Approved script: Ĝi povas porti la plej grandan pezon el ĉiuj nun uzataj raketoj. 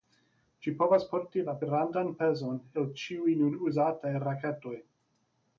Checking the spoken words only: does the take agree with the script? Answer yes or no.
no